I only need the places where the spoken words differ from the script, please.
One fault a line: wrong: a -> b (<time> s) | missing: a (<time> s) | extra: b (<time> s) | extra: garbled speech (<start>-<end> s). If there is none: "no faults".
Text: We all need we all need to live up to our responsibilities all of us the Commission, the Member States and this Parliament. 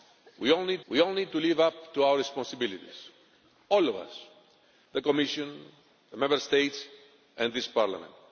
no faults